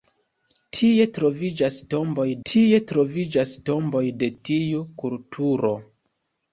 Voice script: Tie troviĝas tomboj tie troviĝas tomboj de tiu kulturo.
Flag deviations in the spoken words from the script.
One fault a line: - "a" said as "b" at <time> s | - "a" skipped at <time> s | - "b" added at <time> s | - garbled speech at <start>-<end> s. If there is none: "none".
none